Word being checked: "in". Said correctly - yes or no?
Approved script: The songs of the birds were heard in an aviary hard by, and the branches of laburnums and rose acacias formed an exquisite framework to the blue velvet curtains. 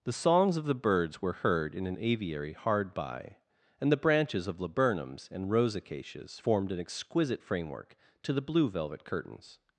yes